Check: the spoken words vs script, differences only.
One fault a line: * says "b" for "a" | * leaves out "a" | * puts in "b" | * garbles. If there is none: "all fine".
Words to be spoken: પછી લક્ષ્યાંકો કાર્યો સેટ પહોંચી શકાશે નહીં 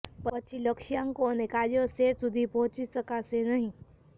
* puts in "અને"
* puts in "સુધી"